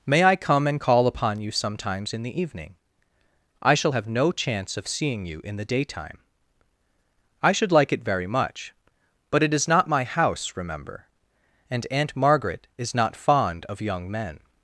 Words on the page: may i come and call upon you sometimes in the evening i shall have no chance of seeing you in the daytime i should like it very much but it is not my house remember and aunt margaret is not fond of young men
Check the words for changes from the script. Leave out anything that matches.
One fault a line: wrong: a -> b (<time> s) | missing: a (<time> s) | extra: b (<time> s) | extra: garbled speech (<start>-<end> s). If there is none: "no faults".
no faults